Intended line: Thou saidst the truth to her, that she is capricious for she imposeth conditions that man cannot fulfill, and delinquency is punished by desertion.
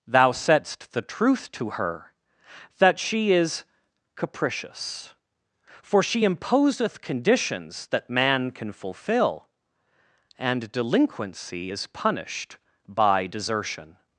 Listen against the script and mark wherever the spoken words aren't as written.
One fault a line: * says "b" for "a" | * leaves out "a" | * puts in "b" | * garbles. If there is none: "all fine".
* says "can" for "cannot"